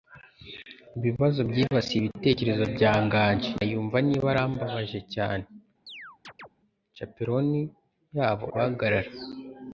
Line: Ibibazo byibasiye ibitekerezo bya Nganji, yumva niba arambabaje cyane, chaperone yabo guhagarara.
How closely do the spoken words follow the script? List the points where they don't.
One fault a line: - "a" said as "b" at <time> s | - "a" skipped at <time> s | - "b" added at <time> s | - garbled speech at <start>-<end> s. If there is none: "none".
none